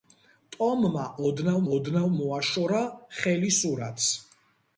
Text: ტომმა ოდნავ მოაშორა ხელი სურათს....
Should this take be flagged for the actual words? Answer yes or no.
yes